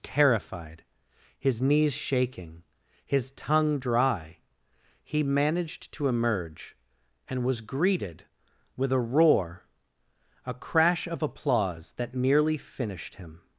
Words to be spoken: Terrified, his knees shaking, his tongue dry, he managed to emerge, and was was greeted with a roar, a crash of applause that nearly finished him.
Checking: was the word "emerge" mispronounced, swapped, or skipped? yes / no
no